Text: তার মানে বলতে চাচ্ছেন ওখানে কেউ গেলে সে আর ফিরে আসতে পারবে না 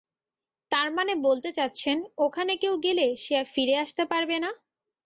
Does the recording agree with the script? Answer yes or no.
yes